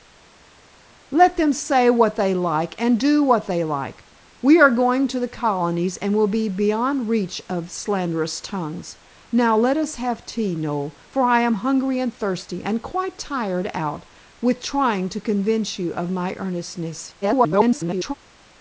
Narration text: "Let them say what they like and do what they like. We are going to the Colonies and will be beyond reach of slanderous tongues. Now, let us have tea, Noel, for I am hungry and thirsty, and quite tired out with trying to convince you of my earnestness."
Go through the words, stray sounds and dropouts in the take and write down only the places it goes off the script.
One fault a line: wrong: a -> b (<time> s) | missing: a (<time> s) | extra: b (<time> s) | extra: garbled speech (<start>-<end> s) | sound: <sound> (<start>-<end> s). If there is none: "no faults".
extra: garbled speech (17.2-18.1 s)